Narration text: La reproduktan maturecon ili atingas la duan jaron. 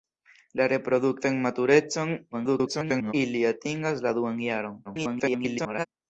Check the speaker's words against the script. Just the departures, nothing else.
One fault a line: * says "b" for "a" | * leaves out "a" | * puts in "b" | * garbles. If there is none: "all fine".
* garbles
* garbles